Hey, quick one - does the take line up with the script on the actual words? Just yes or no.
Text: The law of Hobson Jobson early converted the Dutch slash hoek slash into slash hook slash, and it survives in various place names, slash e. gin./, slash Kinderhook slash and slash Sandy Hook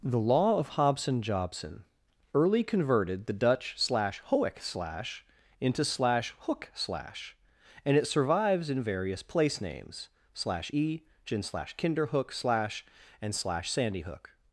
yes